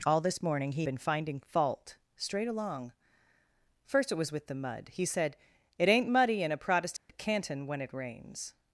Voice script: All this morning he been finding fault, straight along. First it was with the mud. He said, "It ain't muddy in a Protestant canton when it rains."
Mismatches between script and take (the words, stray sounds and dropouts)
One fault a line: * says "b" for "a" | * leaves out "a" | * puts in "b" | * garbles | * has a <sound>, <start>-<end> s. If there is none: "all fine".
* has a dropout, 7.0-7.1 s